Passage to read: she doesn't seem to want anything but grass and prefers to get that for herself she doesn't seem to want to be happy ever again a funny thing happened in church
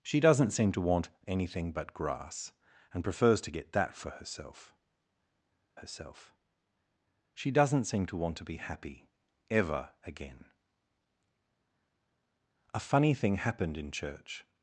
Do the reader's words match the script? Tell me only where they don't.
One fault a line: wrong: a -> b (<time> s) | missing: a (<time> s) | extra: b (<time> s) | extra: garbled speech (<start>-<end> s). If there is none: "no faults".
extra: herself (5.7 s)